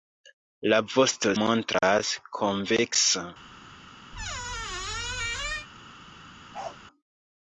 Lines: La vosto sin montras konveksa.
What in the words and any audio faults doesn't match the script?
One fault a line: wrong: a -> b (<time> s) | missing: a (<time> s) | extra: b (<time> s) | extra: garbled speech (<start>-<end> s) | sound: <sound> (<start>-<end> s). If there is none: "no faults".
missing: sin (1.4 s)
sound: squeak (4.1-5.7 s)
sound: bark (6.5-6.8 s)